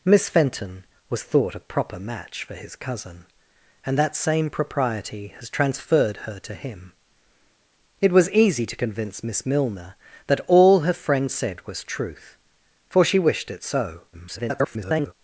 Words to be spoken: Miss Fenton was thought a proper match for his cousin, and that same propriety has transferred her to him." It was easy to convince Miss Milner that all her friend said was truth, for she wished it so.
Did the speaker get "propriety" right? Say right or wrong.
right